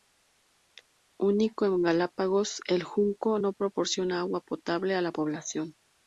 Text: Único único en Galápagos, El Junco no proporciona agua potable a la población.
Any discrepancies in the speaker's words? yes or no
yes